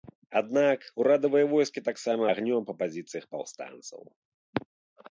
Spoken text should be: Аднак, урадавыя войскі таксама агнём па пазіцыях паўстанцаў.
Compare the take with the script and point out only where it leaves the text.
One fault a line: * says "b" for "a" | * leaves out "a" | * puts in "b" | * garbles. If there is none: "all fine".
all fine